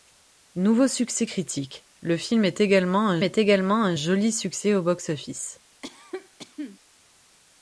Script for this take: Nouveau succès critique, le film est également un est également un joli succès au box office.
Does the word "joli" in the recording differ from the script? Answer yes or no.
no